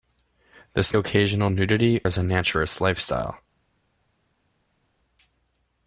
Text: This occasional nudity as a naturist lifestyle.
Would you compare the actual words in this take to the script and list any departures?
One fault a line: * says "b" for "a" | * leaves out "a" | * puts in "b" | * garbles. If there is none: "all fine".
all fine